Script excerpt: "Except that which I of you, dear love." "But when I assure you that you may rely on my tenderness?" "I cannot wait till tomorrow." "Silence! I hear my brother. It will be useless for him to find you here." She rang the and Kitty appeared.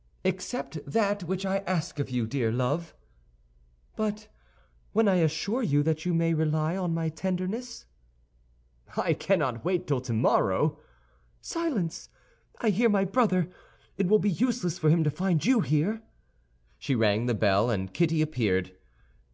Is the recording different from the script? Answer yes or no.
yes